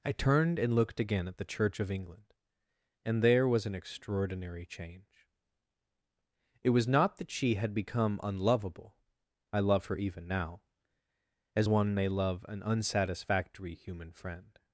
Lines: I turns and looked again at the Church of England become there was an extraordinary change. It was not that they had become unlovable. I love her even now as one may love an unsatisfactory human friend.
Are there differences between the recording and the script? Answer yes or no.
yes